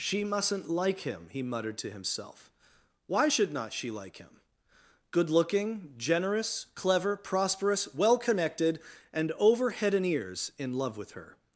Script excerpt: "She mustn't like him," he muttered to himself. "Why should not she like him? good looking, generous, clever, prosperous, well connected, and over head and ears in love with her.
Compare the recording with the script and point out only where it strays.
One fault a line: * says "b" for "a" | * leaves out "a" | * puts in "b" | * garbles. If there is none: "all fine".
all fine